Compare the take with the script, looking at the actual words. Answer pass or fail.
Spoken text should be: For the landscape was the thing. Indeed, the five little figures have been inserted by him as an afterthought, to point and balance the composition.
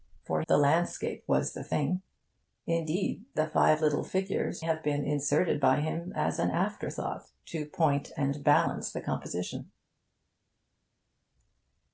pass